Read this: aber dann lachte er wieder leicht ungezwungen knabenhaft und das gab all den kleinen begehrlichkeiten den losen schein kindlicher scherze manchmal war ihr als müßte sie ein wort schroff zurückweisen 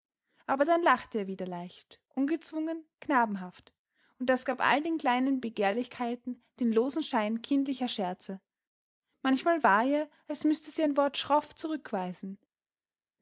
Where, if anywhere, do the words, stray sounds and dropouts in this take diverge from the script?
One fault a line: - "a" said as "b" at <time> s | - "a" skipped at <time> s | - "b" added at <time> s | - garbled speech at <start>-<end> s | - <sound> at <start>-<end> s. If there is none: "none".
none